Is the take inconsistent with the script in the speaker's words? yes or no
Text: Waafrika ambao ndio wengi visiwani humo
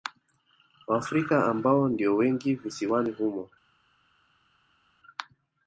no